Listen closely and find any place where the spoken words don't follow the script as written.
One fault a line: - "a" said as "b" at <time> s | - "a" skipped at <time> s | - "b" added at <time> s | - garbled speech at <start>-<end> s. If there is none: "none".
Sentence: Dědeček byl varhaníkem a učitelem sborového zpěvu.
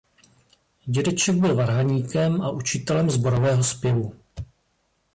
none